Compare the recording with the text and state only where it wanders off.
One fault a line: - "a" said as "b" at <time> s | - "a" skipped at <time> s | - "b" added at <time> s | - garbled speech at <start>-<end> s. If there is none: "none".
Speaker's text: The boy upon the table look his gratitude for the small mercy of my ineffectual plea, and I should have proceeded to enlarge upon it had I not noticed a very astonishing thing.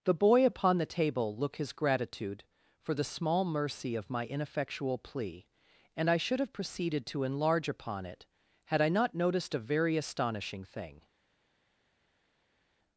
none